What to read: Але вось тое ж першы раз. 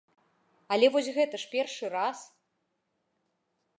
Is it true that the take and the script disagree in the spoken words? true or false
true